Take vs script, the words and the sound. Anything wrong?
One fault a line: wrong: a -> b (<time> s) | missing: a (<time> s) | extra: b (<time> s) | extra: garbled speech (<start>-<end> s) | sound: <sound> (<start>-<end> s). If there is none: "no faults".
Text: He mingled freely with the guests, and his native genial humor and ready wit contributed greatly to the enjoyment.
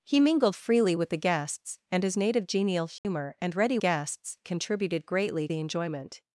sound: dropout (3.0-3.0 s)
wrong: wit -> guests (3.8 s)
missing: to (5.5 s)